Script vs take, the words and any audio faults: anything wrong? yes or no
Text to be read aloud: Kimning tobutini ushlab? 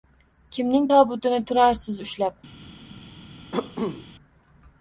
yes